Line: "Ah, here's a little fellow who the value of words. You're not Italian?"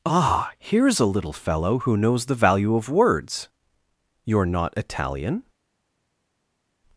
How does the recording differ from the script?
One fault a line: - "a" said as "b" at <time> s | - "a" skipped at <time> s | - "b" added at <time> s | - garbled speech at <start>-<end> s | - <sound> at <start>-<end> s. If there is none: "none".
- "knows" added at 1.9 s